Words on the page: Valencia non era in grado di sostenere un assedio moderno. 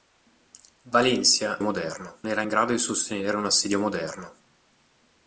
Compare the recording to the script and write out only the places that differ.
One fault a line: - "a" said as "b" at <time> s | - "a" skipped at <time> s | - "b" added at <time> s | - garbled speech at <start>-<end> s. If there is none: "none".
- "non" said as "moderno" at 1.6 s